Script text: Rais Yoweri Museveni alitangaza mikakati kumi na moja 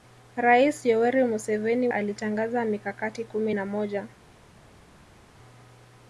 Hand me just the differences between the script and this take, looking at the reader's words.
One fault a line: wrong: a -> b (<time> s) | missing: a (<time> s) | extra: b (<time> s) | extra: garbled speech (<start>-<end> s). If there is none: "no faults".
no faults